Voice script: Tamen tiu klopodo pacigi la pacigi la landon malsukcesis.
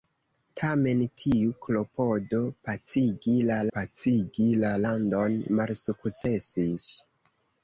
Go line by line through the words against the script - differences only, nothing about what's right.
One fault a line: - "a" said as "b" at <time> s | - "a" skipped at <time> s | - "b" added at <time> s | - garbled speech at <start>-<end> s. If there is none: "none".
none